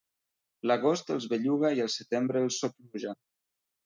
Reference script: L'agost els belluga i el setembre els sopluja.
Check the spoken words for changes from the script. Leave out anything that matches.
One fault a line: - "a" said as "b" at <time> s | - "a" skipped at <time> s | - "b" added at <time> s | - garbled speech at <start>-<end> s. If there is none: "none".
none